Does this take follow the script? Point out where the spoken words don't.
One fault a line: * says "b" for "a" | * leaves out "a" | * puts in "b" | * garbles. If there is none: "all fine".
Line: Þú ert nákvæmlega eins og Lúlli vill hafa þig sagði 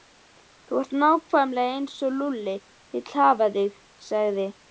all fine